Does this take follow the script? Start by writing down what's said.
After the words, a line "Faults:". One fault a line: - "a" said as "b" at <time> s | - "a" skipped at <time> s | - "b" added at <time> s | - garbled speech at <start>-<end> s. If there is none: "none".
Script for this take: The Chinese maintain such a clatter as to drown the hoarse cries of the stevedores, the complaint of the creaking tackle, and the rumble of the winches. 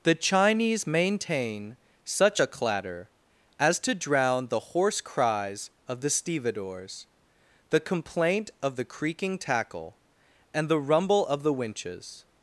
The Chinese maintain such a clatter as to drown the hoarse cries of the stevedores, the complaint of the creaking tackle, and the rumble of the winches.
Faults:
none